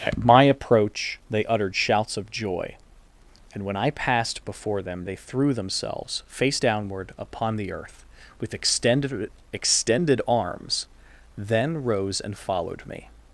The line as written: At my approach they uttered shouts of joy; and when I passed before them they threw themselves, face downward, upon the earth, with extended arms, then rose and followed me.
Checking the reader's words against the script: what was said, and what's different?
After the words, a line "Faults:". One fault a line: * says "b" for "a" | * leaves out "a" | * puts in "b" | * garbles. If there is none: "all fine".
At my approach they uttered shouts of joy; and when I passed before them they threw themselves, face downward, upon the earth, with extended extended arms, then rose and followed me.
Faults:
* puts in "extended"